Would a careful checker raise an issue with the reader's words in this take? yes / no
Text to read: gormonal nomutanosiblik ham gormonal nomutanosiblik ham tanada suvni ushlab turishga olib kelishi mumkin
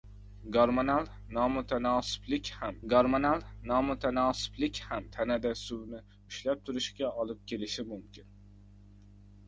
no